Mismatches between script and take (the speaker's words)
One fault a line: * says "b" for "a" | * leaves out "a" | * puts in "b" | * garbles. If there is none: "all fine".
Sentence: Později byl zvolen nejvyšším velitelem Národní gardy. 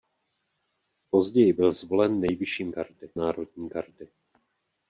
* says "gardy" for "velitelem"